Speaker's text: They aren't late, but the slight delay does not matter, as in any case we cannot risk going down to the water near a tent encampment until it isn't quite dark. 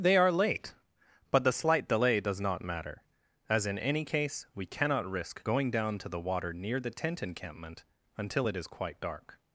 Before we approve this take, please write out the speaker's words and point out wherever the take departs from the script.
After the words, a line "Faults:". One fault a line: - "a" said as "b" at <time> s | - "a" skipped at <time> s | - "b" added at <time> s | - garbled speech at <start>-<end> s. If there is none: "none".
They are late, but the slight delay does not matter, as in any case we cannot risk going down to the water near the tent encampment until it is quite dark.
Faults:
- "aren't" said as "are" at 0.2 s
- "a" said as "the" at 6.8 s
- "isn't" said as "is" at 8.5 s